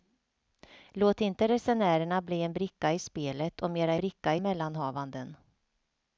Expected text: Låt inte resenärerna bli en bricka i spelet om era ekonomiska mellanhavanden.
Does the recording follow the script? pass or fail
fail